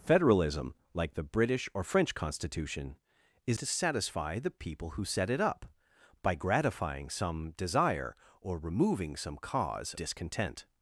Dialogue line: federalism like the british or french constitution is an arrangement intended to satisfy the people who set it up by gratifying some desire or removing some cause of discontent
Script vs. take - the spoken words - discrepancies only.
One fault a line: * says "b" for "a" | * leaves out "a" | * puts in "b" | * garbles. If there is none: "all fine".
* leaves out "an arrangement intended"
* leaves out "of"